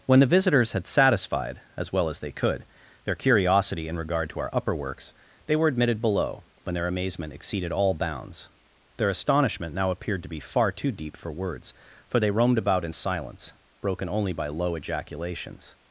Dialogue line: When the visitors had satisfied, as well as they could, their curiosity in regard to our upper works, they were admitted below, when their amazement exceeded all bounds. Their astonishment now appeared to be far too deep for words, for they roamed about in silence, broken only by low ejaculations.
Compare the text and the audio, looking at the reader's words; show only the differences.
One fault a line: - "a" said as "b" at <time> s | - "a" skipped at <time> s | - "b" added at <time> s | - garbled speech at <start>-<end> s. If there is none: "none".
none